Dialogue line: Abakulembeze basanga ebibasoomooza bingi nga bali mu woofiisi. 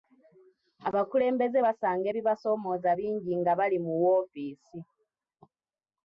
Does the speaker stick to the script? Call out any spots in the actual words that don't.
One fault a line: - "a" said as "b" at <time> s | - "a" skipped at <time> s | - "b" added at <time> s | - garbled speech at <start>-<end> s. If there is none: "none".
none